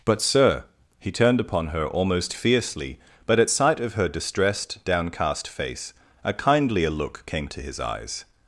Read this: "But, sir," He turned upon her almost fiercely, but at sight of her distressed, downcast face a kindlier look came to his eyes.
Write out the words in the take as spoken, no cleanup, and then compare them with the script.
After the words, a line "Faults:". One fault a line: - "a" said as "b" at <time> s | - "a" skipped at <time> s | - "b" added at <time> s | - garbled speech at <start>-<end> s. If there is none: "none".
"But, sir," He turned upon her almost fiercely, but at sight of her distressed, downcast face a kindlier look came to his eyes.
Faults:
none